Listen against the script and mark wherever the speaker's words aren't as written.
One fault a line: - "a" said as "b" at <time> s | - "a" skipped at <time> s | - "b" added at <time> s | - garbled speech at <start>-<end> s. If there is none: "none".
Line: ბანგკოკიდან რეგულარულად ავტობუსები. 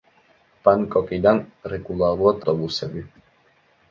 none